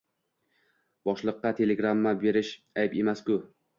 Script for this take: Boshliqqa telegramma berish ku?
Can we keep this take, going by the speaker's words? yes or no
no